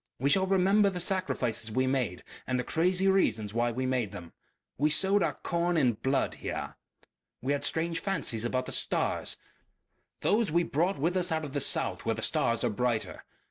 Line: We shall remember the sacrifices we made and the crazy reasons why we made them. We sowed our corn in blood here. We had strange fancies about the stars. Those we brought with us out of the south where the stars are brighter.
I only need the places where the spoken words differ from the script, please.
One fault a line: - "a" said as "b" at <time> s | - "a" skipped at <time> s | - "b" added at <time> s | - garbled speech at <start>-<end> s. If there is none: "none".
none